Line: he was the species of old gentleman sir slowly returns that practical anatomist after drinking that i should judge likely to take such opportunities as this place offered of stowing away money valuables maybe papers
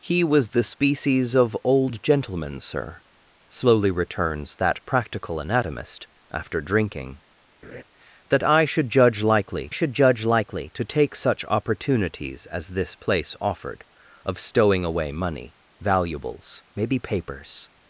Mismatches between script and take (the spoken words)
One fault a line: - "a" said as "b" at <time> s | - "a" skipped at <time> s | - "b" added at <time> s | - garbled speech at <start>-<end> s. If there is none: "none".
- "should judge likely" added at 9.7 s